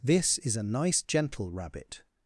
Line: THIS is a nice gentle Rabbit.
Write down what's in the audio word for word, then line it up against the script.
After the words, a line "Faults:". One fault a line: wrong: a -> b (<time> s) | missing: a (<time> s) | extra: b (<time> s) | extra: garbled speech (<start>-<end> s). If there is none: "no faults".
THIS is a nice gentle Rabbit.
Faults:
no faults